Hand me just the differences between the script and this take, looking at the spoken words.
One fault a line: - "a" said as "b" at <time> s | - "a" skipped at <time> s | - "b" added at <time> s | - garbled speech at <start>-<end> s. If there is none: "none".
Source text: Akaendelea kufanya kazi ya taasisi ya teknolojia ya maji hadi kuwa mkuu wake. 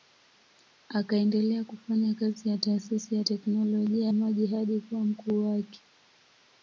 - "ya" skipped at 4.1 s